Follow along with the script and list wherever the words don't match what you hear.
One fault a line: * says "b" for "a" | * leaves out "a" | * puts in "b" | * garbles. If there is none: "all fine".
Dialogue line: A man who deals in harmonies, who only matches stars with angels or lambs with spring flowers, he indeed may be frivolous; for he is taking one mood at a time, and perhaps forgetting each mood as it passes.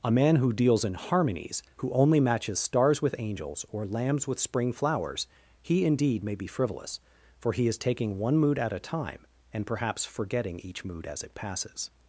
all fine